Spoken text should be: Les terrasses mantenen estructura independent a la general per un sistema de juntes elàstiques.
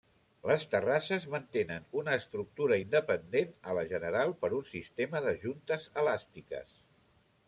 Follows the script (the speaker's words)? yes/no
no